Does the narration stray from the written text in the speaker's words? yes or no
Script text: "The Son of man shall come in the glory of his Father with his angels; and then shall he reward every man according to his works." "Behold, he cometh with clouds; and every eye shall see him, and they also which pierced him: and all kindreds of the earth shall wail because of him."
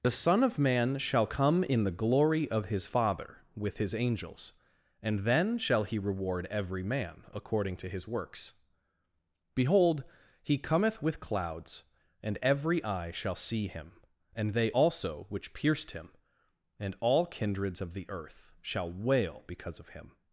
no